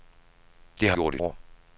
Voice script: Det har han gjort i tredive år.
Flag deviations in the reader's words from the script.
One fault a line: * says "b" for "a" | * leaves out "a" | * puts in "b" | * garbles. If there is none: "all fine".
* leaves out "han"
* leaves out "tredive"